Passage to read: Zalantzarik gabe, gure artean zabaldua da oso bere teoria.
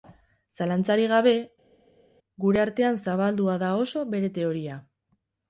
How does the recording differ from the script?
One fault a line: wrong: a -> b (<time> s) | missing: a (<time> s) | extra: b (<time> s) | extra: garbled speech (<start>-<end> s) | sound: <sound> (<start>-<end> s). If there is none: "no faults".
no faults